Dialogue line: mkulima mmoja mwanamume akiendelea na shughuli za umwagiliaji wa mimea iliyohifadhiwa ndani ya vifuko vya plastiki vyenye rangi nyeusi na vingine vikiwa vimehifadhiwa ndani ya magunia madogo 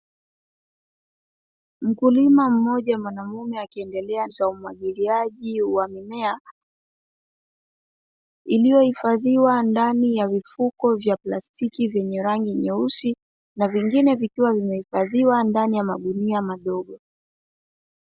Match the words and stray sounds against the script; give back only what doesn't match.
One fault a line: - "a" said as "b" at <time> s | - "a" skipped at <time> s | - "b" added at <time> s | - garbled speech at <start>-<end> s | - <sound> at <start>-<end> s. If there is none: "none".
- "na shughuli" skipped at 4.3 s